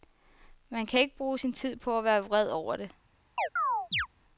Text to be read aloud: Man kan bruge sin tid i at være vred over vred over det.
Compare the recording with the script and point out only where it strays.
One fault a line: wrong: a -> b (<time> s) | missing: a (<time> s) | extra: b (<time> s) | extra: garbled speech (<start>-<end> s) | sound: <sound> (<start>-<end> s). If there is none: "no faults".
extra: ikke (1.0 s)
wrong: i -> på (1.8 s)
missing: vred over (2.8 s)
sound: chirp (3.4-4.1 s)